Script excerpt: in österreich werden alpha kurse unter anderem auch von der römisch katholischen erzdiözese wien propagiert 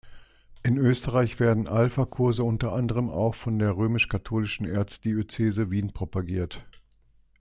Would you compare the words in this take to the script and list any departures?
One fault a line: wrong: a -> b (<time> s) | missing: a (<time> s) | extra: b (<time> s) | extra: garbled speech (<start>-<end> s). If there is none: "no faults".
no faults